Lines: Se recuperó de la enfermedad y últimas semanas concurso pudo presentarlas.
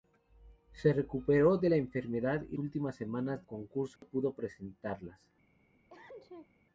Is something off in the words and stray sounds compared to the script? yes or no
yes